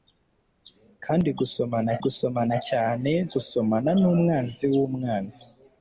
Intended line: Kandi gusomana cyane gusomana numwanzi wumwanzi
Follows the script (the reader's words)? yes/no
no